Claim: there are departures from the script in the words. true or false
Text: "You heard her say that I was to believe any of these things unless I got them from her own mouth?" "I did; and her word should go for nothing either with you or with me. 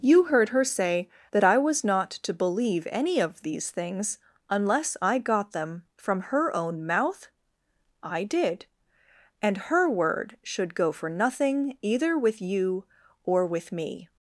true